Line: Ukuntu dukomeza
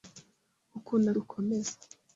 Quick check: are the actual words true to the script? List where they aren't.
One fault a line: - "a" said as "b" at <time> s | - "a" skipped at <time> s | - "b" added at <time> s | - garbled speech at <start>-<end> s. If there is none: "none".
none